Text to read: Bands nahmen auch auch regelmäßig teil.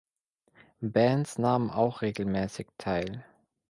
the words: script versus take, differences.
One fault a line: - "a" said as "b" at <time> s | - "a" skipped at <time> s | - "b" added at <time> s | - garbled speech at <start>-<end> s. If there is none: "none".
- "auch" skipped at 2.0 s